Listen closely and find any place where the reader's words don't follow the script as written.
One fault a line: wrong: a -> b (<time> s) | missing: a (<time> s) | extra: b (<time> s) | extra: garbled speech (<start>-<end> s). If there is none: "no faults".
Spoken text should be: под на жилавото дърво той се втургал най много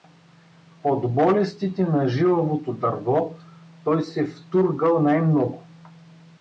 extra: болестите (1.1 s)